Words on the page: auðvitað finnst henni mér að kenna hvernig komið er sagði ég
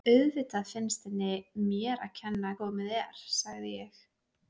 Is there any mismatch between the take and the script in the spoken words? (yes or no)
yes